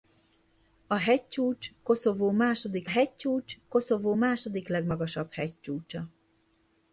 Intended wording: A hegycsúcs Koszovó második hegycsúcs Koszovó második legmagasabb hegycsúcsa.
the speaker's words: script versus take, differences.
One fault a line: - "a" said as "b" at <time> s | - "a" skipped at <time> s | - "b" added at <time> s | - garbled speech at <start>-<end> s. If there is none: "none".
none